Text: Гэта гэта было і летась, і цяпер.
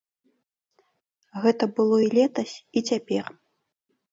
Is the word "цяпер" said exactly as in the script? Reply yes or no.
yes